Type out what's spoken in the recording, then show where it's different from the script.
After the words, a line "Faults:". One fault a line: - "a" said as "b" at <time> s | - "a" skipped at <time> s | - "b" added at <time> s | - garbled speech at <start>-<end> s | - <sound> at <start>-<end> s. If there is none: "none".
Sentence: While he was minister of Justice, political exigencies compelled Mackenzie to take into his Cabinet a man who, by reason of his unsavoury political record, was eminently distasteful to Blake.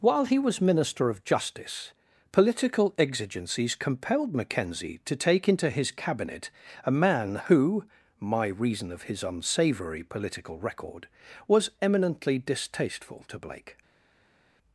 While he was minister of Justice, political exigencies compelled Mackenzie to take into his Cabinet a man who, my reason of his unsavoury political record, was eminently distasteful to Blake.
Faults:
- "by" said as "my" at 8.2 s